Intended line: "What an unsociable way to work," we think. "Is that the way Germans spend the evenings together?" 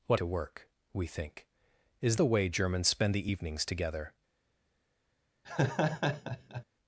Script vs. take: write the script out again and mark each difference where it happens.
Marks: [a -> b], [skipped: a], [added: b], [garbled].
"What [skipped: an unsociable way] to work," we think. "Is [skipped: that] the way Germans spend the evenings together?"